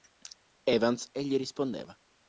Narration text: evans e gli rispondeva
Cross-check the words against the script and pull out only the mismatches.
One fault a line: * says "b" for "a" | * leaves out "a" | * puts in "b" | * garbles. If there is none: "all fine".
all fine